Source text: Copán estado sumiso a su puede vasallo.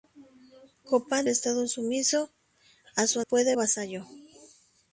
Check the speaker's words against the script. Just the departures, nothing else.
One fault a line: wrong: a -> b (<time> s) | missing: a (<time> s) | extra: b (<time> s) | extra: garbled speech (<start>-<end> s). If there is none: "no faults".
no faults